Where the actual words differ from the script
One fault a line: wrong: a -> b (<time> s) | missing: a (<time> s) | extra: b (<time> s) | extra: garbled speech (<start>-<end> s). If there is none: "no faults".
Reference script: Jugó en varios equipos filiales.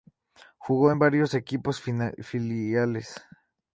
no faults